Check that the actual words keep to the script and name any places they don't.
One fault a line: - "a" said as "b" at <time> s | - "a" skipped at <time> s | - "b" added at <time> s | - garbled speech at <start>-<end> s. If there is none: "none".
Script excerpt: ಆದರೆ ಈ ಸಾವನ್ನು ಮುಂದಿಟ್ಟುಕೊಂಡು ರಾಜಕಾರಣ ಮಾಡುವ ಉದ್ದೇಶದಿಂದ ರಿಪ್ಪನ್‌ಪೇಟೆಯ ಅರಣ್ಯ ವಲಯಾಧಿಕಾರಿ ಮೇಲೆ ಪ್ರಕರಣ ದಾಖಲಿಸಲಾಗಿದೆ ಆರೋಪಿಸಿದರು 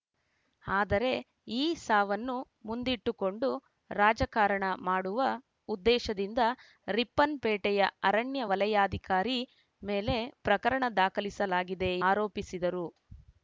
none